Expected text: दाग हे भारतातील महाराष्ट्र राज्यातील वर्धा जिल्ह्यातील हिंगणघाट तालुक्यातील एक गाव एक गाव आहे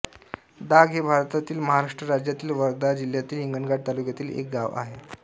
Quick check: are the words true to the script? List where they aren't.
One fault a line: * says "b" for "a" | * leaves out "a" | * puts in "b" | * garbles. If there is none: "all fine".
* leaves out "एक गाव"